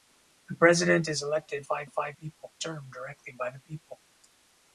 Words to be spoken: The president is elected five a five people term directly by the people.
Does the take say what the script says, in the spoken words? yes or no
yes